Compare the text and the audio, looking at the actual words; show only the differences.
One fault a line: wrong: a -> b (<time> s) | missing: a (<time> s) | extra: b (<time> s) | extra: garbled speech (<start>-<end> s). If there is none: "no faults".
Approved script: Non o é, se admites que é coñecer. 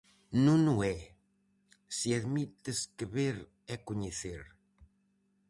extra: ver (3.1 s)